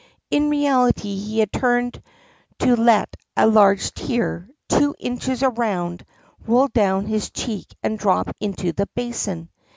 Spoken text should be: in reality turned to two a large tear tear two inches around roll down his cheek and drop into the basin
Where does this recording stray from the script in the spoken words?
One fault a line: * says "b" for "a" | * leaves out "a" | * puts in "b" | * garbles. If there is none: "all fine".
* puts in "he had"
* says "let" for "two"
* leaves out "tear"